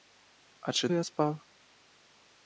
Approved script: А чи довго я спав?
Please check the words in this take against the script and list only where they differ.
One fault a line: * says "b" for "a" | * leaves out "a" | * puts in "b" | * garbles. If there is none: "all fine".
* leaves out "довго"